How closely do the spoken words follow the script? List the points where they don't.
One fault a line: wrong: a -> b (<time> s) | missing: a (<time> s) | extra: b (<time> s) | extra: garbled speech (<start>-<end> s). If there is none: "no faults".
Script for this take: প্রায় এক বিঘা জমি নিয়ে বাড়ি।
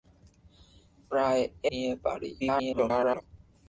missing: এক বিঘা জমি (1.4 s)
extra: garbled speech (2.4-3.2 s)